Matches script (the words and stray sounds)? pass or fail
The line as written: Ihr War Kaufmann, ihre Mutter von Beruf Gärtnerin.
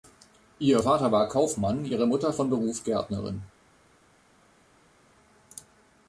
fail